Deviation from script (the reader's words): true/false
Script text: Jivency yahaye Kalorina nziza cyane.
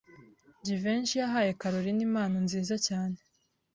true